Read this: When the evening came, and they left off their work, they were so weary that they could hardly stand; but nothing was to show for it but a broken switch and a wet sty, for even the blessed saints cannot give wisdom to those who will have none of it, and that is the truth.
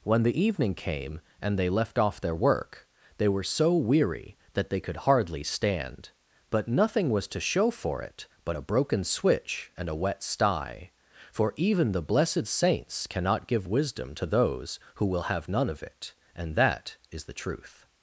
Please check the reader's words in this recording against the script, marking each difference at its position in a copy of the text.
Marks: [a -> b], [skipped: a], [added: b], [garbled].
When the evening came, and they left off their work, they were so weary that they could hardly stand; but nothing was to show for it but a broken switch and a wet sty, for even the blessed saints cannot give wisdom to those who will have none of it, and that is the truth.